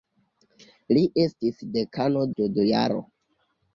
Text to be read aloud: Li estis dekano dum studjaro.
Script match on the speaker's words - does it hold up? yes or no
no